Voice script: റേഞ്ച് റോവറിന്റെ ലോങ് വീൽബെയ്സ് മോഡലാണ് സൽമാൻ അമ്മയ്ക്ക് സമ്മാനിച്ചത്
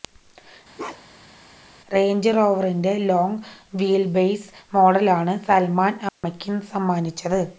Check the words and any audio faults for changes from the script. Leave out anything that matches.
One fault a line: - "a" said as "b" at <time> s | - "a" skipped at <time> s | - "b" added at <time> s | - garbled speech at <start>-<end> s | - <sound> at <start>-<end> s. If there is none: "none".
- bark at 0.8-1.4 s
- dropout at 6.1-6.2 s